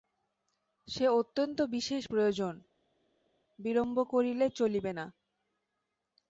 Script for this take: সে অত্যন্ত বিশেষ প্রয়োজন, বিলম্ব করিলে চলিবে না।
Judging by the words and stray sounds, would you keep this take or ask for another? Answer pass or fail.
pass